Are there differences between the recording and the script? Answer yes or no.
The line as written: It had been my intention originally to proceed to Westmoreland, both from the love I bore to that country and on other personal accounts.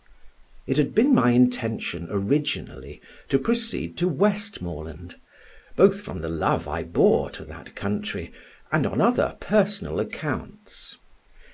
no